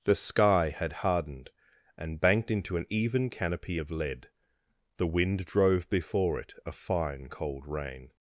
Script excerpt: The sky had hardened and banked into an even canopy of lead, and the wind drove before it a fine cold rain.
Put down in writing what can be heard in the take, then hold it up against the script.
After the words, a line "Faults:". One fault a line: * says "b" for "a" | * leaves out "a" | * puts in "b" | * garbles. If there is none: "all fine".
The sky had hardened and banked into an even canopy of lead, the wind drove before it a fine cold rain.
Faults:
* leaves out "and"